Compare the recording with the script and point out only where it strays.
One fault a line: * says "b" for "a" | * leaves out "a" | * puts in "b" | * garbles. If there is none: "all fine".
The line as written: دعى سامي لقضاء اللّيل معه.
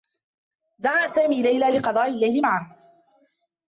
* puts in "ليلى"